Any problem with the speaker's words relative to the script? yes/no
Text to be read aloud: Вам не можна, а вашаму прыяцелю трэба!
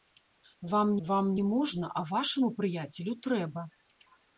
yes